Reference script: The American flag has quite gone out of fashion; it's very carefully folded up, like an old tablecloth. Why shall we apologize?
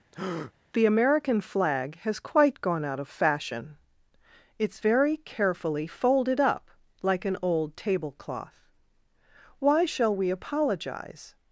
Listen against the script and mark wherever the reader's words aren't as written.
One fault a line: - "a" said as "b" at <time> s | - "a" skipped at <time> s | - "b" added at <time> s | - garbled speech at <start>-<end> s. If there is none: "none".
none